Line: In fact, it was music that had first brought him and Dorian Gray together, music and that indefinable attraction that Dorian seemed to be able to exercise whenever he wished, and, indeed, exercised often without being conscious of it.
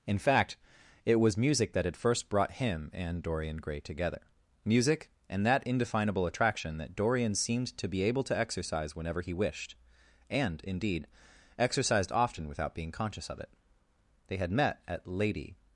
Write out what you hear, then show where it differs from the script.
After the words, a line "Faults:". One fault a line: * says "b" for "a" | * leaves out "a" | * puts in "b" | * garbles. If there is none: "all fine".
In fact, it was music that had first brought him and Dorian Gray together, music and that indefinable attraction that Dorian seemed to be able to exercise whenever he wished, and, indeed, exercised often without being conscious of it. They had met at Lady
Faults:
* puts in "They had met at Lady"